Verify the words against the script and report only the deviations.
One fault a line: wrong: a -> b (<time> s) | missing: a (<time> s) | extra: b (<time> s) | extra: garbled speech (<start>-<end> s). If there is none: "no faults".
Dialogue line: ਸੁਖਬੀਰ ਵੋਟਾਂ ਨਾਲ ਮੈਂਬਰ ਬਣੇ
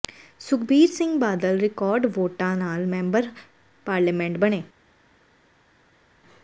extra: ਸਿੰਘ ਬਾਦਲ ਰਿਕਾਰਡ (0.9 s)
extra: ਪਾਰਲੀਮੈਂਟ (3.9 s)